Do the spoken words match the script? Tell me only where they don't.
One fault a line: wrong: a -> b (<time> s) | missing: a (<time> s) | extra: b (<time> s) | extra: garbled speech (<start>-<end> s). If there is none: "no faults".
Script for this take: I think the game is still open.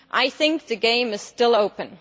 no faults